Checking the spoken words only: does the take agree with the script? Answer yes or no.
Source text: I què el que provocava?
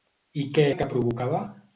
yes